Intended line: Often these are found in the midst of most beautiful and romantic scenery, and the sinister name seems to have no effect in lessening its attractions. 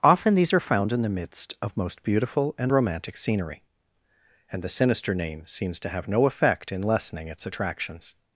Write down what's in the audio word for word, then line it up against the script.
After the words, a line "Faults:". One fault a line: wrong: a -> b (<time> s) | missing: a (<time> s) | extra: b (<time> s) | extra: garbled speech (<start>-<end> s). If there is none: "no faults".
Often these are found in the midst of most beautiful and romantic scenery, and the sinister name seems to have no effect in lessening its attractions.
Faults:
no faults